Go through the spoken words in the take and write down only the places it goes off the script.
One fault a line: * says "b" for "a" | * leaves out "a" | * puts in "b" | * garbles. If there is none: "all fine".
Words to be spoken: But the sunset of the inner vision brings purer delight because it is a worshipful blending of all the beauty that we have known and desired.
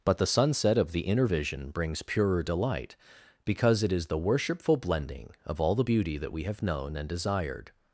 * says "the" for "a"